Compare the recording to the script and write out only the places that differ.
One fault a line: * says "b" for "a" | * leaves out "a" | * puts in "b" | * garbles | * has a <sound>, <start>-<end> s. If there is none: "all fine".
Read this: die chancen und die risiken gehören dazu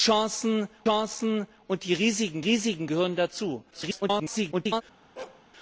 * puts in "chancen"
* puts in "risiken"
* garbles
* has a bark, 5.2-5.4 s